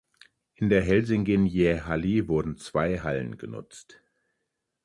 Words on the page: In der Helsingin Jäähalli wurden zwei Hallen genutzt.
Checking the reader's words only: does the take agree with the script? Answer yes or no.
yes